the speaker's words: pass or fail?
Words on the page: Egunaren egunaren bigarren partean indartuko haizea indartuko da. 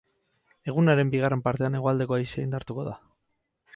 fail